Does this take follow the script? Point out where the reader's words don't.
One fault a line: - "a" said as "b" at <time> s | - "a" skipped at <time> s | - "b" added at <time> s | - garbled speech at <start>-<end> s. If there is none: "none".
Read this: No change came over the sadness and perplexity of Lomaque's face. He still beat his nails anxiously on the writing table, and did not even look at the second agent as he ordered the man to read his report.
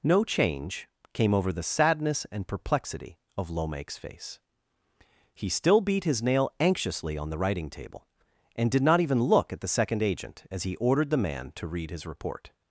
- "nails" said as "nail" at 6.2 s